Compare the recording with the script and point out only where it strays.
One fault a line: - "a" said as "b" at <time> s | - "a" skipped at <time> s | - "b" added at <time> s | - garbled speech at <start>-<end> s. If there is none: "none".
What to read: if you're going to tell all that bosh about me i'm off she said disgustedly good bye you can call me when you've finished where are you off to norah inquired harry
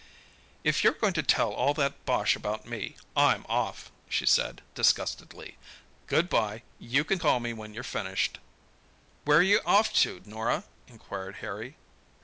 none